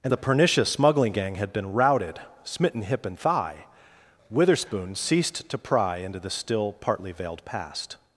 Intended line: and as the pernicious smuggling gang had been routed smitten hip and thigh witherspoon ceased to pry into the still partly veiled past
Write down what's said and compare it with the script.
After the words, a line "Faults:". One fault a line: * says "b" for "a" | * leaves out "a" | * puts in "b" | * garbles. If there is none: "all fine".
and the pernicious smuggling gang had been routed smitten hip and thigh witherspoon ceased to pry into the still partly veiled past
Faults:
* leaves out "as"